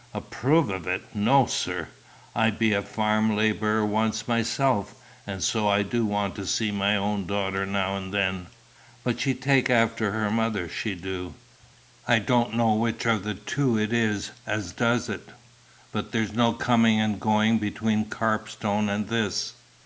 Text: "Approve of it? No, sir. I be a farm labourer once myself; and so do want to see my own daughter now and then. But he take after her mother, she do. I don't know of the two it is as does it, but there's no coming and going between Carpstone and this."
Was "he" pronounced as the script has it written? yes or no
no